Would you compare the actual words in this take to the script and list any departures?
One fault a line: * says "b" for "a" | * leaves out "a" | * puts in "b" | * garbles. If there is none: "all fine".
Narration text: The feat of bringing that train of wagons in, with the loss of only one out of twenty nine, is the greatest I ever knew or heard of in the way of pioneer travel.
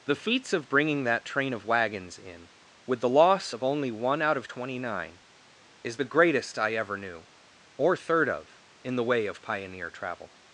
* says "feats" for "feat"
* says "third" for "heard"